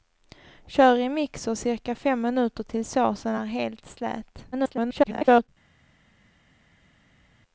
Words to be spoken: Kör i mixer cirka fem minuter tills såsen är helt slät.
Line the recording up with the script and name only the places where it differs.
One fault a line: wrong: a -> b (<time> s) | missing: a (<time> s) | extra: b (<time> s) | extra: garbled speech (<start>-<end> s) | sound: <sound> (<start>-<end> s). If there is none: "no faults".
extra: garbled speech (4.5-5.5 s)